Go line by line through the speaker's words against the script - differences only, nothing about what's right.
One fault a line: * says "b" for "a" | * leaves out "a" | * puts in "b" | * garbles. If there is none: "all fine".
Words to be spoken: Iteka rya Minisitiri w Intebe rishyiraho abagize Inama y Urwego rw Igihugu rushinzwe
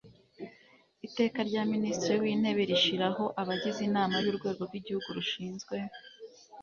all fine